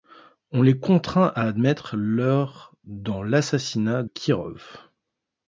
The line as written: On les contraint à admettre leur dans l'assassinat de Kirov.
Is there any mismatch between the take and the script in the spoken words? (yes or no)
yes